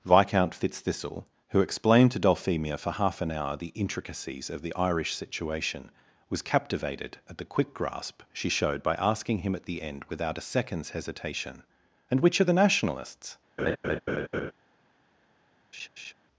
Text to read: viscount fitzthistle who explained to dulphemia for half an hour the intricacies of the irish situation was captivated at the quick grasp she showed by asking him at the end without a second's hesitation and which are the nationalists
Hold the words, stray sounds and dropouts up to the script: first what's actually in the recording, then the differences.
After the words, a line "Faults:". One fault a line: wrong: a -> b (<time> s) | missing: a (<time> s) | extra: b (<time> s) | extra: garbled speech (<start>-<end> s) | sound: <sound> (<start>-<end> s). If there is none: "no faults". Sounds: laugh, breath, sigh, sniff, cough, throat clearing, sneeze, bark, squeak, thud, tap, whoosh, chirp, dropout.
viscount fitzthistle who explained to dulphemia for half an hour the intricacies of the irish situation was captivated at the quick grasp she showed by asking him at the end without a second's hesitation and which are the nationalists
Faults:
sound: laugh (13.6-14.5 s)
sound: laugh (15.7-16.1 s)